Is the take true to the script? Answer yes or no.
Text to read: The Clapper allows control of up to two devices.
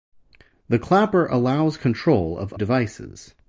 no